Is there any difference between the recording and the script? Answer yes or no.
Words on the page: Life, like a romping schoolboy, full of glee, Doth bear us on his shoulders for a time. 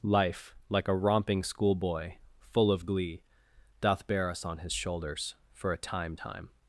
yes